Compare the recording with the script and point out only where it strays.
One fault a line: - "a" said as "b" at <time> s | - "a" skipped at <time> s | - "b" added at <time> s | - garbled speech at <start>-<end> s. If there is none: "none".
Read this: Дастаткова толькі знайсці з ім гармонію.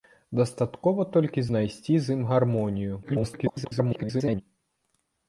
- garbled speech at 3.0-4.4 s